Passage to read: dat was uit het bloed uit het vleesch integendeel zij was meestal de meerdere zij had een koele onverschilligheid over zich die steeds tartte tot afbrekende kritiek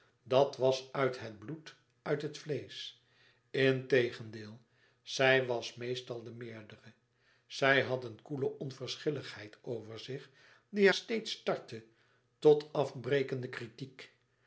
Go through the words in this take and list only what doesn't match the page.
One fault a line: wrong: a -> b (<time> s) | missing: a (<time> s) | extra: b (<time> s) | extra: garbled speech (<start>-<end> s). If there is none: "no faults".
no faults